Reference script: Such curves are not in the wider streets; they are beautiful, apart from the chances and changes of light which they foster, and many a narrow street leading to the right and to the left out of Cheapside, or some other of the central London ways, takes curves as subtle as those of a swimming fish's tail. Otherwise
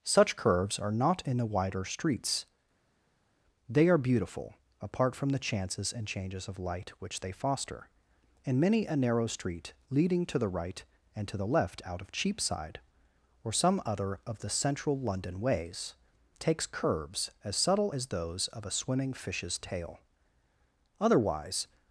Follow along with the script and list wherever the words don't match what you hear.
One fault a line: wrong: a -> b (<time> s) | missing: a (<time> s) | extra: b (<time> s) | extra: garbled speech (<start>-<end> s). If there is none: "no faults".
no faults